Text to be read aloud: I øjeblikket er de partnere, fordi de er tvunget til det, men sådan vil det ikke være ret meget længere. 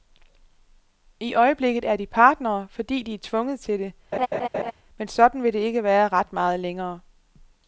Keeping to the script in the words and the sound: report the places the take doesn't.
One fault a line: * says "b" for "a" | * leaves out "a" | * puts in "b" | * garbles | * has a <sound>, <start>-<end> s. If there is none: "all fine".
* has a laugh, 4.1-4.7 s